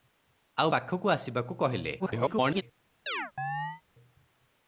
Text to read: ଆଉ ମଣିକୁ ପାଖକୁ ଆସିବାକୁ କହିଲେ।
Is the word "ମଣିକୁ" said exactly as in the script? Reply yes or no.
no